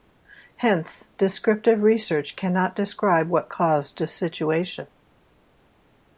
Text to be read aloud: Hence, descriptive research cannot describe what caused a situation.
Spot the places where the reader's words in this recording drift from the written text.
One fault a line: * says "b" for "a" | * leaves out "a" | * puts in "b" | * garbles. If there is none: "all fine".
all fine